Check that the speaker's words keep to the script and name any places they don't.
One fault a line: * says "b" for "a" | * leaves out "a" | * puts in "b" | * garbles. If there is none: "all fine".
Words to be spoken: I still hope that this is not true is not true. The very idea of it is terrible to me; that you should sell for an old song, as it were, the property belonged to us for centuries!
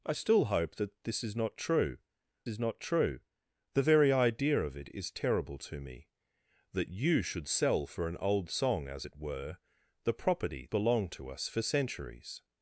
all fine